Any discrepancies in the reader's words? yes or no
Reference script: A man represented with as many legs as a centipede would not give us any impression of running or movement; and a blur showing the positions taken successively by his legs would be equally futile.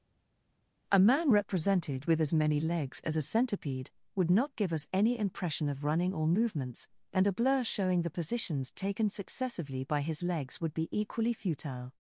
yes